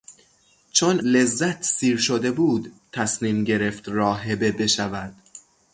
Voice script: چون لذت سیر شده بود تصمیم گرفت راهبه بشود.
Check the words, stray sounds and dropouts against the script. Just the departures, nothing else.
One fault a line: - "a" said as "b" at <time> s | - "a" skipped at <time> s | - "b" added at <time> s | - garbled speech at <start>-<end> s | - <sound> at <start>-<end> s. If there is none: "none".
none